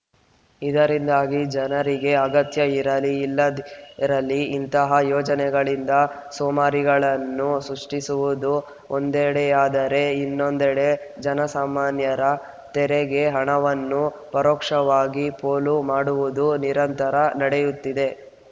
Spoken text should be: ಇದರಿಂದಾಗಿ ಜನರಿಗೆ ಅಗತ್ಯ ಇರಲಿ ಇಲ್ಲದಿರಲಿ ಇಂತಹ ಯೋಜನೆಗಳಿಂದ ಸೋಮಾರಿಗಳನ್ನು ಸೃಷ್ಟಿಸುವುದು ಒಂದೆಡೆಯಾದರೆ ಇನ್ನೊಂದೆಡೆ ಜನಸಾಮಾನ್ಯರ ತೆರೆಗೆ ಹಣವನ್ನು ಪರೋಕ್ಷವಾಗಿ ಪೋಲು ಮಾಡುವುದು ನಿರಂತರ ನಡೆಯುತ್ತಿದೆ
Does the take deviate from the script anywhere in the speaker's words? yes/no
no